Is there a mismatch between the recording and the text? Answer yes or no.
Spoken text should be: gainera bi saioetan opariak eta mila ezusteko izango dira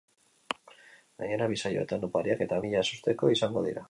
no